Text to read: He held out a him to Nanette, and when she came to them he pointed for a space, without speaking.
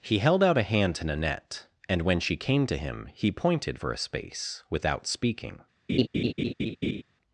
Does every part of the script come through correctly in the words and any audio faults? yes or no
no